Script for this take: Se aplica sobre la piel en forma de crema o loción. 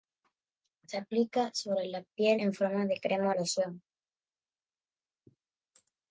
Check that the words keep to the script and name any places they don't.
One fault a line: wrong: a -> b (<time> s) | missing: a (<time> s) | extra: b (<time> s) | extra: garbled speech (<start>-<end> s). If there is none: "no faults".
no faults